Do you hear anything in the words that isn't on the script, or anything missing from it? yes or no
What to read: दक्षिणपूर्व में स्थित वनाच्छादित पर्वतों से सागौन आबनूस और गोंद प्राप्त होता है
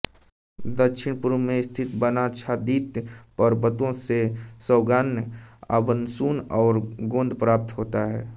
no